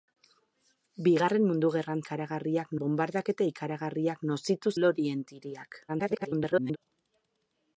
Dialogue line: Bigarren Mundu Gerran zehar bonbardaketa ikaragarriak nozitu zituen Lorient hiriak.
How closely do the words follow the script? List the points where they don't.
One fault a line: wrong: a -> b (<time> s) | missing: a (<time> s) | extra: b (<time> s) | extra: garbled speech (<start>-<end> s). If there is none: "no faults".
wrong: zehar -> ikaragarriak (2.0 s)
missing: zituen (4.7 s)
extra: garbled speech (5.9-6.8 s)